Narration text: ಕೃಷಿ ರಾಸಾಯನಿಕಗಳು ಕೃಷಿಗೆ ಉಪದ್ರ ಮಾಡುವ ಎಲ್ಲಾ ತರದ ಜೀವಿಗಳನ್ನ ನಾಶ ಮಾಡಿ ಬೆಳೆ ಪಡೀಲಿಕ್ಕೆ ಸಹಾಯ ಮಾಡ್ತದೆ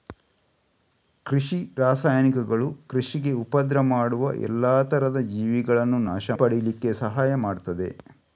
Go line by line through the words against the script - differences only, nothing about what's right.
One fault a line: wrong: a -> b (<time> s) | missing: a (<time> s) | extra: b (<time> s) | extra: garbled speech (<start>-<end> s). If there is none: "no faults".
missing: ಮಾಡಿ ಬೆಳೆ (6.3 s)